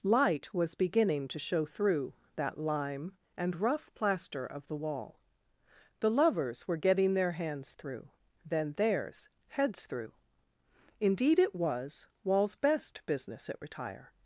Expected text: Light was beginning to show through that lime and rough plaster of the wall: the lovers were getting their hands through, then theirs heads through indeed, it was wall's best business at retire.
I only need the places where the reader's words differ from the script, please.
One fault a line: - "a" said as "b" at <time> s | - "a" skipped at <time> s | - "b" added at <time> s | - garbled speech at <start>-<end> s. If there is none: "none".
none